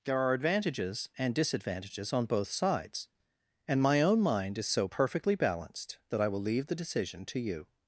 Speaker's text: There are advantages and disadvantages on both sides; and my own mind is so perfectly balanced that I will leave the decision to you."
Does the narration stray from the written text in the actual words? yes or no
no